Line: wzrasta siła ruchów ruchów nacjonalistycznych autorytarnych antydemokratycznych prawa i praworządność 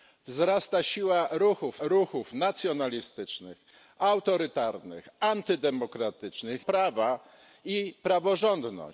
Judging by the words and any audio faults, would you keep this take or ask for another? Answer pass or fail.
pass